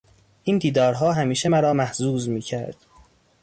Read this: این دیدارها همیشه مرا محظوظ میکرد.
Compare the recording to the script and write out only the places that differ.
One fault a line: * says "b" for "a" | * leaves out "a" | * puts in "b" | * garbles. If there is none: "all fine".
all fine